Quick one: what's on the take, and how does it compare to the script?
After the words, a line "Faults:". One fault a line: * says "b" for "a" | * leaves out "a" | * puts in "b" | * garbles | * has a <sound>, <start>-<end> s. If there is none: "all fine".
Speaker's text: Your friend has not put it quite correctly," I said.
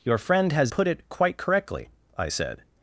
Your friend has put it quite correctly," I said.
Faults:
* leaves out "not"